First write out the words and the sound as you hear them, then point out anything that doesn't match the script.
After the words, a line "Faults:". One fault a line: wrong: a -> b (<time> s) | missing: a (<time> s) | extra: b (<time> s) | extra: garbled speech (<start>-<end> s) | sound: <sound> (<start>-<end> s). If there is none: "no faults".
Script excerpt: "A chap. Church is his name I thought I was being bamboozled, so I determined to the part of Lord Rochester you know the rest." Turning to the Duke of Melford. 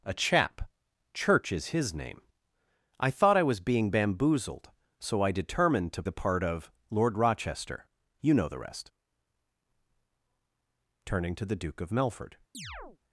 "A chap. Church is his name I thought I was being bamboozled, so I determined to the part of Lord Rochester you know the rest." Turning to the Duke of Melford.
Faults:
sound: chirp (12.5-13.0 s)